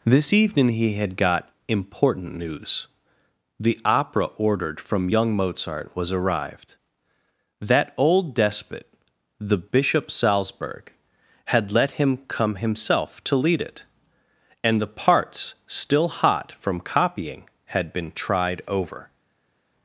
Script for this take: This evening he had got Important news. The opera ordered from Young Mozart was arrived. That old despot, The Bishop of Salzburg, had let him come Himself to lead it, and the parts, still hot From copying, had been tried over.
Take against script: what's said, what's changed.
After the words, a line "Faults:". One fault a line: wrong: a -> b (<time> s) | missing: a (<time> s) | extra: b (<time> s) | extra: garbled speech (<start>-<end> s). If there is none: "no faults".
This evening he had got Important news. The opera ordered from Young Mozart was arrived. That old despot, The Bishop Salzburg, had let him come Himself to lead it, and the parts, still hot From copying, had been tried over.
Faults:
missing: of (10.1 s)